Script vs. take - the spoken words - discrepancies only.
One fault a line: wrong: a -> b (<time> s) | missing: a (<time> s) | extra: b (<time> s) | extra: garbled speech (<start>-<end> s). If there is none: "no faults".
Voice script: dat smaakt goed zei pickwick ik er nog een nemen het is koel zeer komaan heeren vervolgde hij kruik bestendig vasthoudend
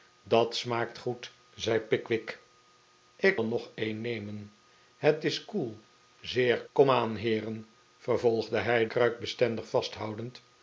no faults